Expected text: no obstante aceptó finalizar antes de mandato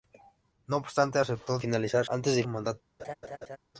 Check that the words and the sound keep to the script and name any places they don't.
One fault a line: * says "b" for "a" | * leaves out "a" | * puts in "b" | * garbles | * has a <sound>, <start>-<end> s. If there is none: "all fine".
* has a laugh, 3.0-3.6 s